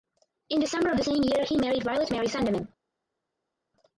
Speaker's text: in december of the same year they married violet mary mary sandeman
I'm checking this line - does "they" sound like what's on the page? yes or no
no